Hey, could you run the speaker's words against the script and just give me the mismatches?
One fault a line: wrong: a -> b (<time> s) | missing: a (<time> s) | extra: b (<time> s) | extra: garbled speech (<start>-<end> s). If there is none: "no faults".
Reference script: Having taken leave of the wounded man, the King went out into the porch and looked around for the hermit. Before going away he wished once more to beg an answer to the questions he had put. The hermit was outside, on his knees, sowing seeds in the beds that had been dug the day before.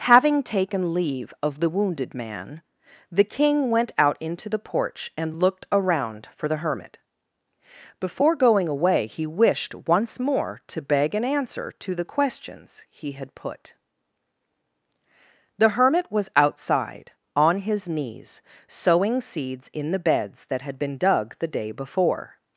no faults